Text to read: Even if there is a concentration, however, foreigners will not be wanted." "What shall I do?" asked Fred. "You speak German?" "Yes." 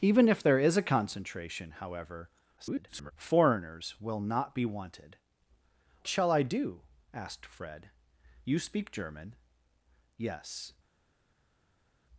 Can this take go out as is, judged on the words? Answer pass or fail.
fail